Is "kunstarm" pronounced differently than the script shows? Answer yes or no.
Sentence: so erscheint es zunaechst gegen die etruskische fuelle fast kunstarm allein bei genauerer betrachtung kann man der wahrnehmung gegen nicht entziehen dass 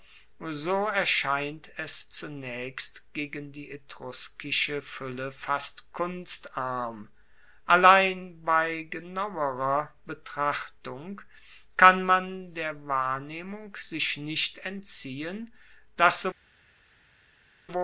no